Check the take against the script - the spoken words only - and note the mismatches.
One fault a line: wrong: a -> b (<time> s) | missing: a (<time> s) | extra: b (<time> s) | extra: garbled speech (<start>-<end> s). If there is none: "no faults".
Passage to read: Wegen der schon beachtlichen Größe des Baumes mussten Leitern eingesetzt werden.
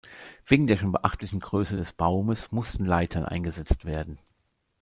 no faults